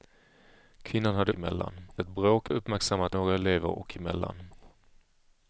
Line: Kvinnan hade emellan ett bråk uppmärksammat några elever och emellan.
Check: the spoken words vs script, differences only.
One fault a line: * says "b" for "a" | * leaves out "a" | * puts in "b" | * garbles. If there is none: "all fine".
all fine